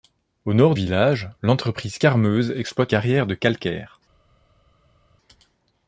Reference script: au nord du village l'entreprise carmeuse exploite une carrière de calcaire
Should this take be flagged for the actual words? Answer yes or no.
yes